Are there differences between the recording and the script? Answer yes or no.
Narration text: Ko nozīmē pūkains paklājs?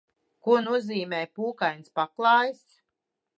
no